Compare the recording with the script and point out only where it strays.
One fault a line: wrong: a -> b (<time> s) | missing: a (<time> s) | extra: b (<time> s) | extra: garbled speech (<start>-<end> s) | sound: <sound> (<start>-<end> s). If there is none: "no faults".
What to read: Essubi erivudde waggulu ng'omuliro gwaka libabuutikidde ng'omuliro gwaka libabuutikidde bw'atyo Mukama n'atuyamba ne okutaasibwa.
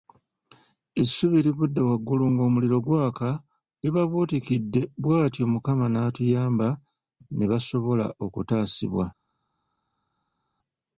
missing: ng'omuliro gwaka libabuutikidde (4.8 s)
extra: basobola (7.5 s)